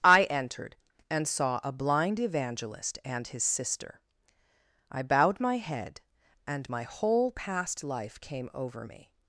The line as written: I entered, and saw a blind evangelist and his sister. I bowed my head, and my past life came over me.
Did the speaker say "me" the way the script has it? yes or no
yes